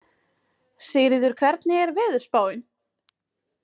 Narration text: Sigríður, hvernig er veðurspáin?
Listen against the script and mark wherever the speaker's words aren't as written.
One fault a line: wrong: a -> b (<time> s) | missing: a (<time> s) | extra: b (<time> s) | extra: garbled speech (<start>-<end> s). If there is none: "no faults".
no faults